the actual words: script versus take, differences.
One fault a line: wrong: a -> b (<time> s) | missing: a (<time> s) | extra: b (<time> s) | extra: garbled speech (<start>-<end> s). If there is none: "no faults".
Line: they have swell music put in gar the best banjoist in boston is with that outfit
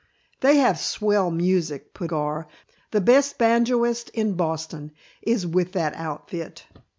missing: in (2.1 s)